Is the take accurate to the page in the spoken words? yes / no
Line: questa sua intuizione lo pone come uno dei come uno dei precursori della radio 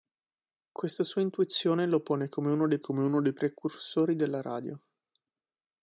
yes